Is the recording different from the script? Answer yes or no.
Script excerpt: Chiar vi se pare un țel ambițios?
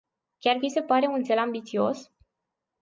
no